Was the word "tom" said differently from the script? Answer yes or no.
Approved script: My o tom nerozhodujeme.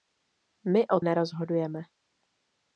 yes